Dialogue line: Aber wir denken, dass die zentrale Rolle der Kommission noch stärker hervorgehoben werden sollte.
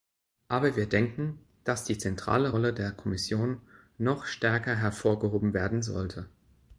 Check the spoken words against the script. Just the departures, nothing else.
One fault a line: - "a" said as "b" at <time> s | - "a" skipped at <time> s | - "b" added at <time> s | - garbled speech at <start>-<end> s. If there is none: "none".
none